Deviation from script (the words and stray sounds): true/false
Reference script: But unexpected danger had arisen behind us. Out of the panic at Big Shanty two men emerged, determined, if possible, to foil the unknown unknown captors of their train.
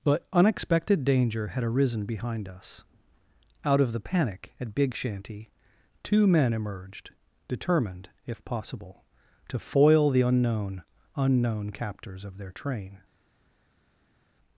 false